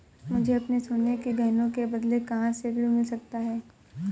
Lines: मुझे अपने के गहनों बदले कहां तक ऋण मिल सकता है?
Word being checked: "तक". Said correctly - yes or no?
no